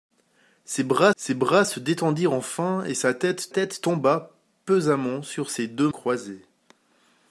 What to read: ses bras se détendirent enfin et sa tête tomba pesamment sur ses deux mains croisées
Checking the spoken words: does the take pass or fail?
fail